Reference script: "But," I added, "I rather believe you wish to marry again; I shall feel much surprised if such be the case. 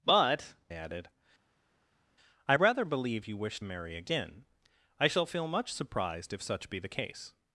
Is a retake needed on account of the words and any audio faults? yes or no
yes